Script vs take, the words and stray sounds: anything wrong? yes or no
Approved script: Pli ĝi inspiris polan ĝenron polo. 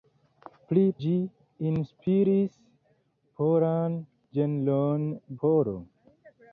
no